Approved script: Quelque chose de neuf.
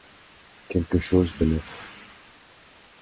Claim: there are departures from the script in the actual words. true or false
false